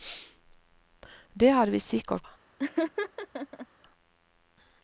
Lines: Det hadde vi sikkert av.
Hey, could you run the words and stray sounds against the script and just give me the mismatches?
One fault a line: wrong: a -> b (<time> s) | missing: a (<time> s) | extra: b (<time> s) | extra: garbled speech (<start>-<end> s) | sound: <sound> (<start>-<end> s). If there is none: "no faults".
sound: laugh (2.6-3.7 s)